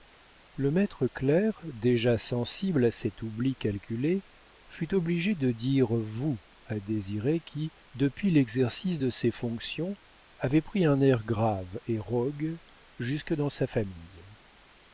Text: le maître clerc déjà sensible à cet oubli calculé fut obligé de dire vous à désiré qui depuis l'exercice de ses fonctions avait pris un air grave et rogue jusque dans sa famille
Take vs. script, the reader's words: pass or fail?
pass